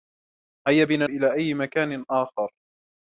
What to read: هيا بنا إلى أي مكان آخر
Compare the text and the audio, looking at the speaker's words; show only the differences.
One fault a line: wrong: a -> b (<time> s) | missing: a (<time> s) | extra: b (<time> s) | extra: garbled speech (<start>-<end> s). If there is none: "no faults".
no faults